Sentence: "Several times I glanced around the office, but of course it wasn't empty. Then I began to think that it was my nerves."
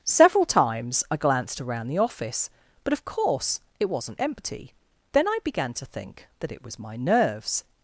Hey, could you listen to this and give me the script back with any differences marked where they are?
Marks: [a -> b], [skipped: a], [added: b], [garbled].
"Several times I glanced around the office, but of course it wasn't empty. Then I began to think that it was my nerves."